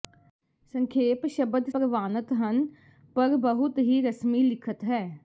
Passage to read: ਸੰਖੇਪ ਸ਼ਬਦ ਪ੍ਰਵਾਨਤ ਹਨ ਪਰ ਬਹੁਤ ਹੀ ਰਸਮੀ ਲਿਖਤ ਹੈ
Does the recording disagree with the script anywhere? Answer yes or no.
no